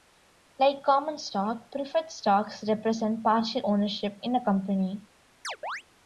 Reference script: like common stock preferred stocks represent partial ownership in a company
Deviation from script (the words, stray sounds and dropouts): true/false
true